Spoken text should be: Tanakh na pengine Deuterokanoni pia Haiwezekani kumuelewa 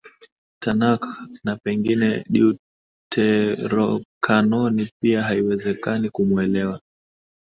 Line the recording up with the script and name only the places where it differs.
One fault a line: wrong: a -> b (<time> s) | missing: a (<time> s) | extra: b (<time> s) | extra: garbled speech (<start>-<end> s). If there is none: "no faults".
no faults